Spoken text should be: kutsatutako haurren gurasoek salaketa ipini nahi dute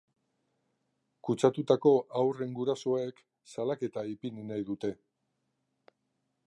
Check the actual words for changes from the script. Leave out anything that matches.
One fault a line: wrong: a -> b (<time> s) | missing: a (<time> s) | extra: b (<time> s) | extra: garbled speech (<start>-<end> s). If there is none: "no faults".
no faults